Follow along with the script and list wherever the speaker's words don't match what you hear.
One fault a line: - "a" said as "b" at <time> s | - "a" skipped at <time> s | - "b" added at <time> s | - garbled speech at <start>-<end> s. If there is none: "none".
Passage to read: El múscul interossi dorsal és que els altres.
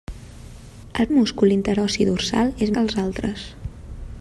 none